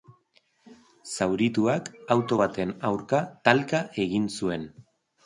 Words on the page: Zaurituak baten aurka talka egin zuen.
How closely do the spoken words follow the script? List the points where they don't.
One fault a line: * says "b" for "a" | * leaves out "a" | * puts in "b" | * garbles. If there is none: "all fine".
* puts in "auto"